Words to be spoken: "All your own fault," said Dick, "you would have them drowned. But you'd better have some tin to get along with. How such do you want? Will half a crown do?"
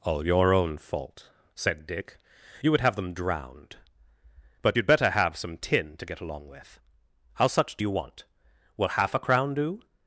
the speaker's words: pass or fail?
pass